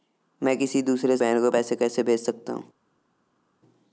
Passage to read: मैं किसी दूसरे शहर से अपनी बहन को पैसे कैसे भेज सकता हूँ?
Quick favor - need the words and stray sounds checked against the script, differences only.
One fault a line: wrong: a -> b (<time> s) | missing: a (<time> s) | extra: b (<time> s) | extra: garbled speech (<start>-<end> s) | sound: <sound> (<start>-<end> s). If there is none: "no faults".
missing: शहर से अपनी (1.2 s)